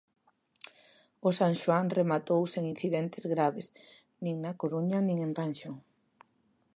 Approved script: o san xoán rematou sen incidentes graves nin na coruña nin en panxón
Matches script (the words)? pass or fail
pass